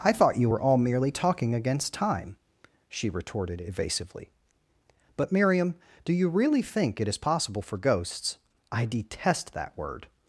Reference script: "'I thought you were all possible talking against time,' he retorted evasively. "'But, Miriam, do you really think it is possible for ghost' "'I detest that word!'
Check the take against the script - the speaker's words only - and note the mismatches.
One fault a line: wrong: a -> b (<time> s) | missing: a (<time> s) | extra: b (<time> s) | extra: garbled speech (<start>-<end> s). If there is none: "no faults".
wrong: possible -> merely (0.8 s)
wrong: he -> she (2.9 s)
wrong: ghost -> ghosts (7.8 s)